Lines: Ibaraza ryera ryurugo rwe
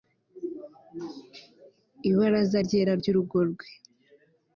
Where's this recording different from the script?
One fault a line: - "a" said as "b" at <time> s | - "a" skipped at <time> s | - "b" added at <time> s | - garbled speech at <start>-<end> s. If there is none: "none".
none